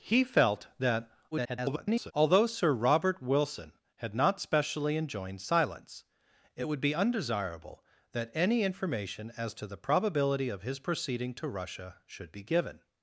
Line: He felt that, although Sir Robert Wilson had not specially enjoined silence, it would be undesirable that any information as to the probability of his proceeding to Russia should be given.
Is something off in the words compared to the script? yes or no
yes